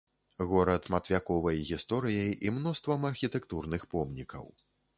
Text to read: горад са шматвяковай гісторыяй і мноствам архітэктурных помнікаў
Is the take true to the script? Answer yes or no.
no